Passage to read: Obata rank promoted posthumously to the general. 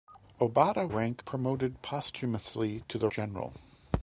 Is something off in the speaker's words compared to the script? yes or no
no